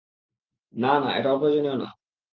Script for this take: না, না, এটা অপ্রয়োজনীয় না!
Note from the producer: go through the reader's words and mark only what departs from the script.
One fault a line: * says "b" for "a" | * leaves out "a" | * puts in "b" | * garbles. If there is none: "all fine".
all fine